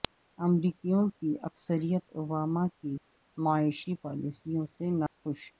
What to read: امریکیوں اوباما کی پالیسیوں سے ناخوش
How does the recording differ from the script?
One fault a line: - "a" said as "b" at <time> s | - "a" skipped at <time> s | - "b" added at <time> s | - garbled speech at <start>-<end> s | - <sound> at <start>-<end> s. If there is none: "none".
- "کی اکثریت" added at 1.2 s
- "معاشی" added at 3.4 s
- dropout at 5.1-5.2 s